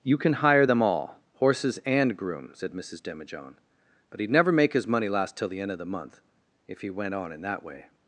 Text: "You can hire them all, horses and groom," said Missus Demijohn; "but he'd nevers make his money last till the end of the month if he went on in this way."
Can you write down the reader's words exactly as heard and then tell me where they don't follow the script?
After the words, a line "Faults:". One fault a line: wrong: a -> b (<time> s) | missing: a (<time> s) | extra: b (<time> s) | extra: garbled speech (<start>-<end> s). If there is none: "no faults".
"You can hire them all, horses and groom," said Missus Demijohn; "but he'd never make his money last till the end of the month if he went on in that way."
Faults:
wrong: nevers -> never (4.3 s)
wrong: this -> that (7.4 s)